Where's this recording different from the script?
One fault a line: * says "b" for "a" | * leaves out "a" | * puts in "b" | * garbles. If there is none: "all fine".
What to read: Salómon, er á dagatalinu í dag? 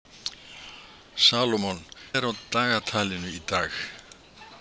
all fine